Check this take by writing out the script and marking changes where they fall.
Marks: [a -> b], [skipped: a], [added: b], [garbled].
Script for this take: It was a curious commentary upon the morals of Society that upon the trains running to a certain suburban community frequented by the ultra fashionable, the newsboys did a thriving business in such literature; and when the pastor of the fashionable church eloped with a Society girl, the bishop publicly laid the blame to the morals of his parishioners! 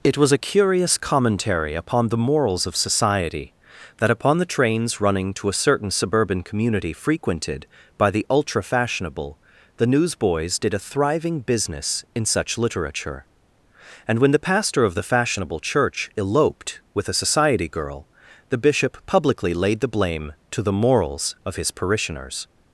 It was a curious commentary upon the morals of Society that upon the trains running to a certain suburban community frequented by the ultra fashionable, the newsboys did a thriving business in such literature; and when the pastor of the fashionable church eloped with a Society girl, the bishop publicly laid the blame to the morals of his parishioners!